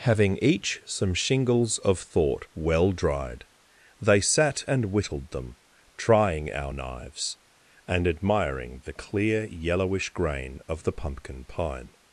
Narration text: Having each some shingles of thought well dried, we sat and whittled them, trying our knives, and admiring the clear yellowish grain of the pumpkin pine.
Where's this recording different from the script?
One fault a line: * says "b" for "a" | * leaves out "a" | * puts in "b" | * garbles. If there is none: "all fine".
* says "they" for "we"